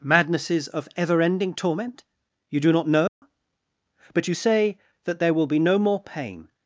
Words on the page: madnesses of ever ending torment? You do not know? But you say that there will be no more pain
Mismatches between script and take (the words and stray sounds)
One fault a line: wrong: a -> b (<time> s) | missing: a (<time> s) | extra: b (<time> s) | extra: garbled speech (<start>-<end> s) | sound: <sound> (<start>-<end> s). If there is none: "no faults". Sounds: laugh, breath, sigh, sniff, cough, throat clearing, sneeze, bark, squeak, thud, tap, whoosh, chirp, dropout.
sound: dropout (3.1-3.2 s)